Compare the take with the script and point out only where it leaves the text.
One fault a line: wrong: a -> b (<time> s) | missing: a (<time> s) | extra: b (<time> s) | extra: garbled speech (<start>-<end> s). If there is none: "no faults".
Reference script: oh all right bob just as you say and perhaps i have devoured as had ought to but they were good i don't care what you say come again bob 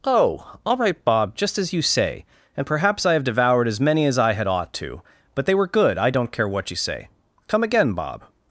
extra: many as i (3.8 s)